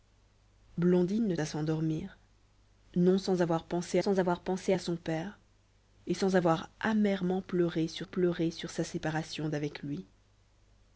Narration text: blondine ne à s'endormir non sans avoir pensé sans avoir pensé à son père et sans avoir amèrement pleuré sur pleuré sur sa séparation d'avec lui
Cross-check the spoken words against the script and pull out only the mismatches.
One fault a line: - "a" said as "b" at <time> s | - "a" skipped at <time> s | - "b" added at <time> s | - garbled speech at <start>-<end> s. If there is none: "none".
none